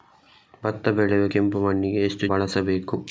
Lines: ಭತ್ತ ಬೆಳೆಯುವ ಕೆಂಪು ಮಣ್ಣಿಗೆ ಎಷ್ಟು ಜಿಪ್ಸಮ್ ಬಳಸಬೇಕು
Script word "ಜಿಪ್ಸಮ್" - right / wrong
wrong